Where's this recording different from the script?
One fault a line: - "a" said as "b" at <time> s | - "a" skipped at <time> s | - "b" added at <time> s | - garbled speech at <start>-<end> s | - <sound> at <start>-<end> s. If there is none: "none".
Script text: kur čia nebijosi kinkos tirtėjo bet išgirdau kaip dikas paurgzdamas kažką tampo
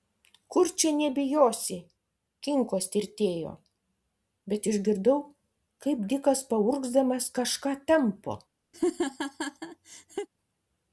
- laugh at 8.7-10.3 s